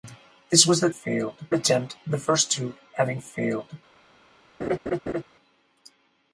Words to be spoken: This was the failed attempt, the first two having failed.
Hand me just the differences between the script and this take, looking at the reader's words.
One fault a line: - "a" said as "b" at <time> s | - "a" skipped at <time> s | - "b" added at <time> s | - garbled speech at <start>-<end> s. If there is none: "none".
none